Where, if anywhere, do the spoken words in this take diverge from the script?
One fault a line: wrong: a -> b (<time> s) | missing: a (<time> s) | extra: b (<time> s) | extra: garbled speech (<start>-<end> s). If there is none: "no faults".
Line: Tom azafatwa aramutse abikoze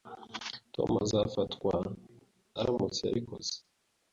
no faults